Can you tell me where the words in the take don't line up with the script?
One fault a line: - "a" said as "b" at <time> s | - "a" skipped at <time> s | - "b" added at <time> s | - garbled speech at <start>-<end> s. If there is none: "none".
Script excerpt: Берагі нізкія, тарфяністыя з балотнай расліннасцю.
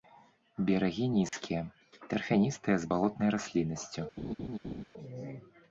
none